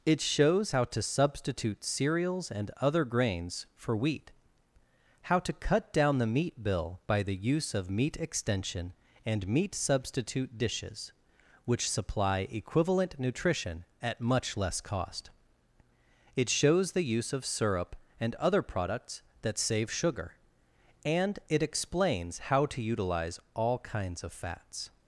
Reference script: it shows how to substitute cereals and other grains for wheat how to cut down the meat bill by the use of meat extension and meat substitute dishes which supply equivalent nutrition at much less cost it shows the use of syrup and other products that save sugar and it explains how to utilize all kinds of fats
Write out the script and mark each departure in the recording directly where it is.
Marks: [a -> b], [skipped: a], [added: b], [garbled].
it shows how to substitute cereals and other grains for wheat how to cut down the meat bill by the use of meat extension and meat substitute dishes which supply equivalent nutrition at much less cost it shows the use of syrup and other products that save sugar and it explains how to utilize all kinds of fats